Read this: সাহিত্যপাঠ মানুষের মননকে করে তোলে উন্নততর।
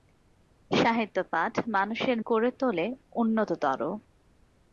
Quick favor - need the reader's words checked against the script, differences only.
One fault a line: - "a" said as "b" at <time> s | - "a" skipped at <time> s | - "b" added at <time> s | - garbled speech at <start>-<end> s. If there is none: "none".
- "মননকে" skipped at 2.2 s